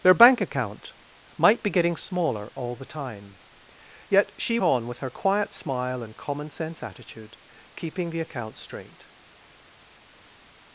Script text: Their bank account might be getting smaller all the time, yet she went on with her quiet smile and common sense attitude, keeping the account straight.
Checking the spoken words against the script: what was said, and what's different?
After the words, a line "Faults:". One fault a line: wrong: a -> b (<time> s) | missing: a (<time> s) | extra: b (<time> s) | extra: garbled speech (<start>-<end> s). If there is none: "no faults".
Their bank account might be getting smaller all the time, yet she on with her quiet smile and common sense attitude, keeping the account straight.
Faults:
missing: went (4.6 s)